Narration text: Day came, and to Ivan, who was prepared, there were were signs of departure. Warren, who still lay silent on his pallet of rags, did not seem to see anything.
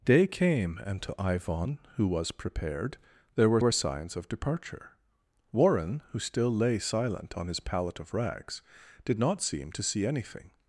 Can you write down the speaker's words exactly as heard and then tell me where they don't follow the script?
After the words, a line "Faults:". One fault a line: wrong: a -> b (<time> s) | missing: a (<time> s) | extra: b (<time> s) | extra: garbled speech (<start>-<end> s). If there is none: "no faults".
Day came, and to Ivan, who was prepared, there were were signs of departure. Warren, who still lay silent on his pallet of rags, did not seem to see anything.
Faults:
no faults